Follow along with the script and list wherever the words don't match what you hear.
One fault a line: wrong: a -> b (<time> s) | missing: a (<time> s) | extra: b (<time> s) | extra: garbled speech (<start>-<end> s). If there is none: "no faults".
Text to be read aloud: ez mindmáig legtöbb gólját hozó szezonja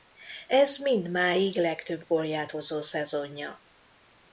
no faults